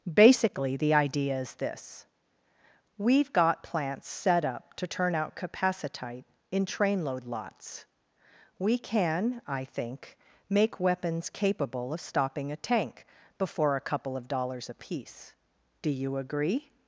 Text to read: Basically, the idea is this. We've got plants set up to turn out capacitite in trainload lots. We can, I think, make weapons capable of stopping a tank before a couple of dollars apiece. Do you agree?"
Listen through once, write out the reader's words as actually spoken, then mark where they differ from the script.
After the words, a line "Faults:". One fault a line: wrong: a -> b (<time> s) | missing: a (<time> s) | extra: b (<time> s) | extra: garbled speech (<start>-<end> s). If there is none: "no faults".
Basically, the idea is this. We've got plants set up to turn out capacitite in trainload lots. We can, I think, make weapons capable of stopping a tank before a couple of dollars apiece. Do you agree?"
Faults:
no faults